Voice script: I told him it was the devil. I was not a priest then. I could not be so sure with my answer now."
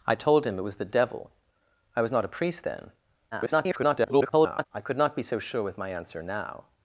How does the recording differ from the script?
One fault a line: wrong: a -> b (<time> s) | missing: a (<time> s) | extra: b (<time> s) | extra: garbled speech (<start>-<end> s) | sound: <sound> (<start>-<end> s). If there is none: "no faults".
extra: garbled speech (3.3-4.7 s)